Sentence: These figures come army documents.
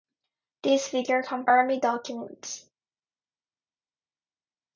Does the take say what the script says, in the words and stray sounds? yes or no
yes